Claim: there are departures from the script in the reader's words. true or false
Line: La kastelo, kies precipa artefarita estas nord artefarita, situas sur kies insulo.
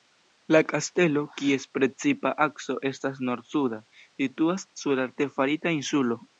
true